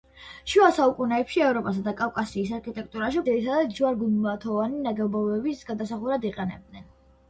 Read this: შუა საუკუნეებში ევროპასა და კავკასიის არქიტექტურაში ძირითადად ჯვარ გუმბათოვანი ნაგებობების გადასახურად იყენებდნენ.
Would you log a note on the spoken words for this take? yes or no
no